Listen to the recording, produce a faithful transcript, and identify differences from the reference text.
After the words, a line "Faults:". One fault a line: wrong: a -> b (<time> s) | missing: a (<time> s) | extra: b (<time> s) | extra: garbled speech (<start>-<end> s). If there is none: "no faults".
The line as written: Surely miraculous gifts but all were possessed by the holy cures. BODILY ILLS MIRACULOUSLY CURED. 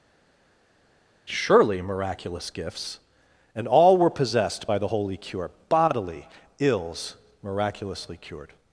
Surely miraculous gifts and all were possessed by the holy cure. BODILY ILLS MIRACULOUSLY CURED.
Faults:
wrong: but -> and (3.5 s)
wrong: cures -> cure (5.2 s)